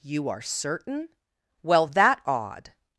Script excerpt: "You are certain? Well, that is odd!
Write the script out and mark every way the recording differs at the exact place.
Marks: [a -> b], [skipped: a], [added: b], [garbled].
"You are certain? Well, that [skipped: is] odd!